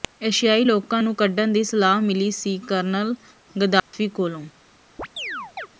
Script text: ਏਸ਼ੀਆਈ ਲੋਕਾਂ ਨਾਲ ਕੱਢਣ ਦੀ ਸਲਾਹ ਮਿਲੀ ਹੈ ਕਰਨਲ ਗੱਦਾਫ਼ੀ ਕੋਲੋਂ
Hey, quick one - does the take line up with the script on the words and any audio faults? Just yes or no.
no